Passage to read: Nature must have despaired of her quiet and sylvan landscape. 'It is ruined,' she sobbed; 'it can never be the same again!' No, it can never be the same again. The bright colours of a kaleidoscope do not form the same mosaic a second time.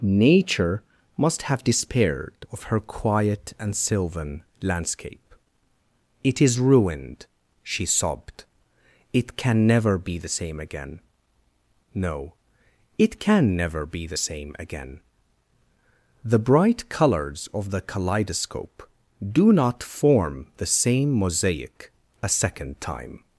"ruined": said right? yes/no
yes